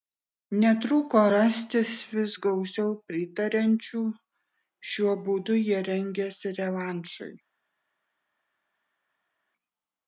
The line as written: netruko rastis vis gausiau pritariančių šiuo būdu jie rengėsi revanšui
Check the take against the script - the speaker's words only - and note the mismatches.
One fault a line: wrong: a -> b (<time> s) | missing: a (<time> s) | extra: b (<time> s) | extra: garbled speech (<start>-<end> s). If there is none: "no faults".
no faults